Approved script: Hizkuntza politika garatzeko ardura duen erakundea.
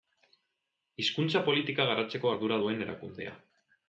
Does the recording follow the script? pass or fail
pass